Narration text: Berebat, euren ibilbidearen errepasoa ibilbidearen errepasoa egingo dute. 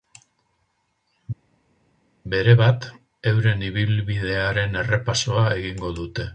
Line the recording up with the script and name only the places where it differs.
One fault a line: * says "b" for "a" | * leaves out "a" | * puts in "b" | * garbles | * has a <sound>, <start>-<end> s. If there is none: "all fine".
* leaves out "ibilbidearen errepasoa"